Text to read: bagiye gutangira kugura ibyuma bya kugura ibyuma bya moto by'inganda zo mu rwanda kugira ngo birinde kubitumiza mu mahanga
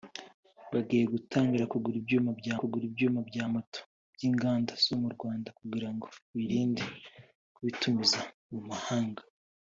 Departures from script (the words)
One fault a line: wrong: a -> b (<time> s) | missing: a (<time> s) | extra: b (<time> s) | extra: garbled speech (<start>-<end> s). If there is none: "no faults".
no faults